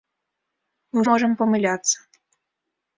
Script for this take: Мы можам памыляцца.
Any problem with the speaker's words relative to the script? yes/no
no